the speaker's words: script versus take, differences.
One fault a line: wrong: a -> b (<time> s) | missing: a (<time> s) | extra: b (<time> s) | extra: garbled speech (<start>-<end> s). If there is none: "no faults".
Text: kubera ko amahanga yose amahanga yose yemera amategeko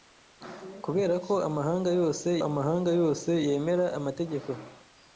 no faults